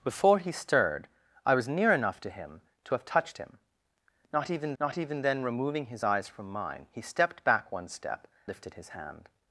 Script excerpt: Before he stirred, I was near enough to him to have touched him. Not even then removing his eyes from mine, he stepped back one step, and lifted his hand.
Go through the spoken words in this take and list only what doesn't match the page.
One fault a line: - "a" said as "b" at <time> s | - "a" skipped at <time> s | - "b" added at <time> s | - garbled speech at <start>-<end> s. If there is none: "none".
- "not even" added at 4.8 s
- "and" skipped at 8.3 s